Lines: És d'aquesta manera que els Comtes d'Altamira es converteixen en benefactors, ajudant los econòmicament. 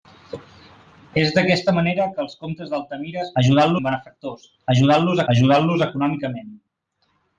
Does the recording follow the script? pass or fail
fail